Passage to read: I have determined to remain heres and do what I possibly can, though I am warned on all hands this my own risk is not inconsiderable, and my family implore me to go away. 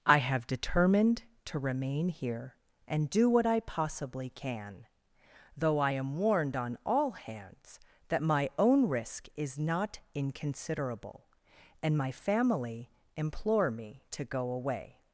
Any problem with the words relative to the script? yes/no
yes